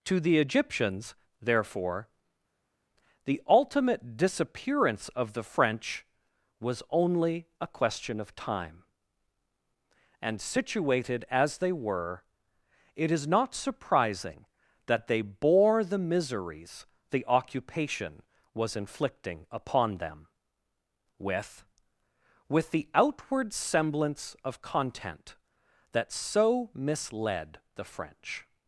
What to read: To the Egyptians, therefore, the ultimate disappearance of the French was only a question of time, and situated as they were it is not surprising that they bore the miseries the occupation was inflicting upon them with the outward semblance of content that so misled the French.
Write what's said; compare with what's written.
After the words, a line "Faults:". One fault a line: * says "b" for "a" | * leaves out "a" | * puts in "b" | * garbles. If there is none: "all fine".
To the Egyptians, therefore, the ultimate disappearance of the French was only a question of time, and situated as they were it is not surprising that they bore the miseries the occupation was inflicting upon them with with the outward semblance of content that so misled the French.
Faults:
* puts in "with"